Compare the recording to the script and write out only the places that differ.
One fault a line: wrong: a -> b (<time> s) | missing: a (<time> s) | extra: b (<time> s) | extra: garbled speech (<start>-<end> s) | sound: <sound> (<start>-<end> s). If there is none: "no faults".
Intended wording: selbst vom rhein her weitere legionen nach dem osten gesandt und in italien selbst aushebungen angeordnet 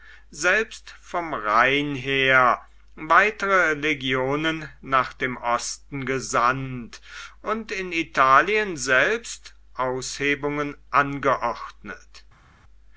no faults